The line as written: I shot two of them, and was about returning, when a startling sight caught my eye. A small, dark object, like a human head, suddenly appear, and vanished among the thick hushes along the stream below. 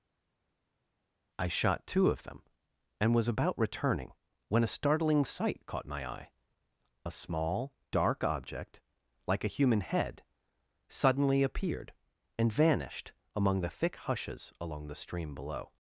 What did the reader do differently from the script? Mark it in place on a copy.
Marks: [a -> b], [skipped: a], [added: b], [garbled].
I shot two of them, and was about returning, when a startling sight caught my eye. A small, dark object, like a human head, suddenly [appear, -> appeared] and vanished among the thick hushes along the stream below.